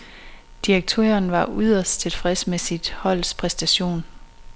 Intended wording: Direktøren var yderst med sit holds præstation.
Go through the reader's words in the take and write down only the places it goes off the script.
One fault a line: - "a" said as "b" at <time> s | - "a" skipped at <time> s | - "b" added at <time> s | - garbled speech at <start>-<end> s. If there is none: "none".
- "tilfreds" added at 2.0 s